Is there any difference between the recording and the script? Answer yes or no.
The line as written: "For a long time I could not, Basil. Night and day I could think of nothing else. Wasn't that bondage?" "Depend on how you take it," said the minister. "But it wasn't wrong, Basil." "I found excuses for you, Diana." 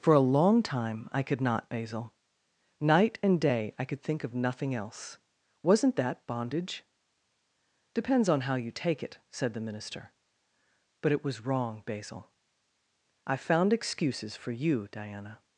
yes